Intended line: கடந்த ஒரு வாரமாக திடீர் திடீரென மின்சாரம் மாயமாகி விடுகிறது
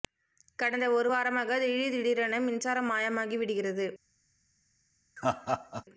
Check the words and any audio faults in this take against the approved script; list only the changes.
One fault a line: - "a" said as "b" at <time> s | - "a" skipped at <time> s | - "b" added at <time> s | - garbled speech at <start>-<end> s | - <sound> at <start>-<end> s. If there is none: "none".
- laugh at 5.2-5.8 s